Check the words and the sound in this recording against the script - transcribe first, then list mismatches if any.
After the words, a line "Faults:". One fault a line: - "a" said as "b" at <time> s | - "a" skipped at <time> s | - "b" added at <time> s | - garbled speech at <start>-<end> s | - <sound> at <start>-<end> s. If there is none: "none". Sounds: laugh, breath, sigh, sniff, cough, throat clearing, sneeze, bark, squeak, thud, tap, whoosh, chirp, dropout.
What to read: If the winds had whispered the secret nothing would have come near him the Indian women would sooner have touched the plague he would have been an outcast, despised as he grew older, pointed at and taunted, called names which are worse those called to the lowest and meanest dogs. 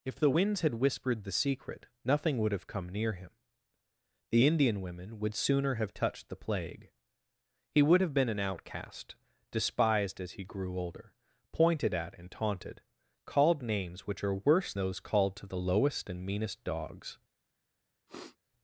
If the winds had whispered the secret nothing would have come near him the Indian women would sooner have touched the plague he would have been an outcast, despised as he grew older, pointed at and taunted, called names which are worse those called to the lowest and meanest dogs.
Faults:
- sniff at 18.1-18.4 s